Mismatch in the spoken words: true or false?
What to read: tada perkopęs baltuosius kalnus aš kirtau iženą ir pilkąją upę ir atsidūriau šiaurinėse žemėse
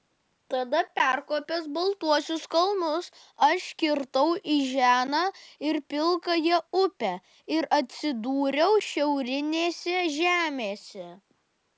false